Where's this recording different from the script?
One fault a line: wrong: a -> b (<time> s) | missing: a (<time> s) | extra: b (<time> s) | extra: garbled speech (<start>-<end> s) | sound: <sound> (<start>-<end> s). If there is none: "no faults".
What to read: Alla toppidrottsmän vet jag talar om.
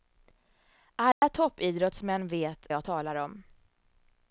sound: dropout (1.1-1.2 s)